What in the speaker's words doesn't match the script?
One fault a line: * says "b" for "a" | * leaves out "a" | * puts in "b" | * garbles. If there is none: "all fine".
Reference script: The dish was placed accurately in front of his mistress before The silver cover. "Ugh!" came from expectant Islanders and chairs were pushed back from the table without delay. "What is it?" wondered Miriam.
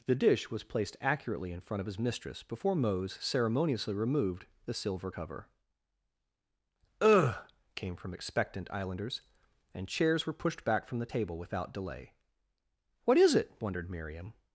* puts in "Mose ceremoniously removed"